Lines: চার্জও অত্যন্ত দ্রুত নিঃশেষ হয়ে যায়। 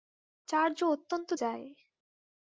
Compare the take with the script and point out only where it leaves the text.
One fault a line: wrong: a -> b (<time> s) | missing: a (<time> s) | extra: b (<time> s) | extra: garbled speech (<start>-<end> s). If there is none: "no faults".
missing: দ্রুত নিঃশেষ হয়ে (1.3 s)